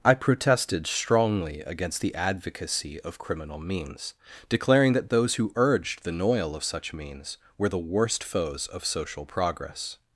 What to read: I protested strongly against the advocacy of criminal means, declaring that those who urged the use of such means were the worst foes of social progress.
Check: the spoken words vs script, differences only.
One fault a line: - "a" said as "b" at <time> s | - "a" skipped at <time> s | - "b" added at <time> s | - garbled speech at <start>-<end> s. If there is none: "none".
- "use" said as "noil" at 6.2 s